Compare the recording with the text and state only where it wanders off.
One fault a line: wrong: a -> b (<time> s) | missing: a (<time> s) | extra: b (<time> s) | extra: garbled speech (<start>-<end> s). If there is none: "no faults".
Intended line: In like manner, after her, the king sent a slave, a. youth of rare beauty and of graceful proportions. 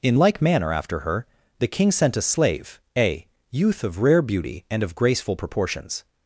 no faults